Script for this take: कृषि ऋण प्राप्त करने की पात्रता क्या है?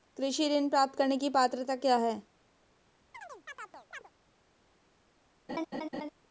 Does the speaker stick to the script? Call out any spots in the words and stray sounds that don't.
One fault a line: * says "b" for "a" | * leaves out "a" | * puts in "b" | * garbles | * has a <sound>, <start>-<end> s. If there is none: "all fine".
* has a chirp, 3.1-4.1 s
* has a laugh, 5.5-6.1 s